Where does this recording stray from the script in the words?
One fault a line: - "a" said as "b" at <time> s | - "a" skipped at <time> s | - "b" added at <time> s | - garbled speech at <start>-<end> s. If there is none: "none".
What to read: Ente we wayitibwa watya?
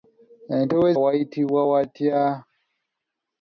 none